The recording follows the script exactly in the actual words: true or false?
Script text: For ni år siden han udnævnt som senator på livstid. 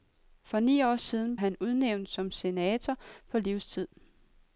true